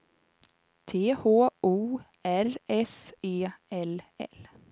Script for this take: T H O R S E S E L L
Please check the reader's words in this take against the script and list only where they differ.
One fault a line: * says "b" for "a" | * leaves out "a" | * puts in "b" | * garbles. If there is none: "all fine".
* leaves out "S E"